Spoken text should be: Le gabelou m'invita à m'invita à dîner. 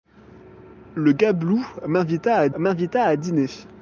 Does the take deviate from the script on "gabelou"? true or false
false